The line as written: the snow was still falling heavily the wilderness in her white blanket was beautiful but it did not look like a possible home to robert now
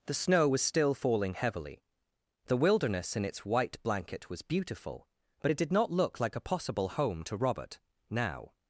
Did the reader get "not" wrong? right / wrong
right